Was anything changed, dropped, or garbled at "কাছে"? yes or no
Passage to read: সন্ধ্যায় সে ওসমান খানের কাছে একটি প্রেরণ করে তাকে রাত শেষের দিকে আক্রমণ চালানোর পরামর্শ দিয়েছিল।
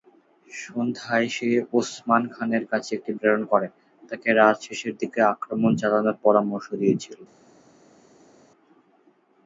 no